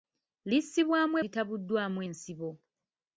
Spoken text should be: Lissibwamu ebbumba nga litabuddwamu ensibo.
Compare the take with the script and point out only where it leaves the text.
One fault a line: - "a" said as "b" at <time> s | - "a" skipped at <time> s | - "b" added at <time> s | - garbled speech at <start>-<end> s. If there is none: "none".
- "ebbumba nga" skipped at 1.1 s